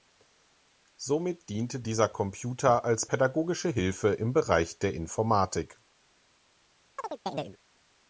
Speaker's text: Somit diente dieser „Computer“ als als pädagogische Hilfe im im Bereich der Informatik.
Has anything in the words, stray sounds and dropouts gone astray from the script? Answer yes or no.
yes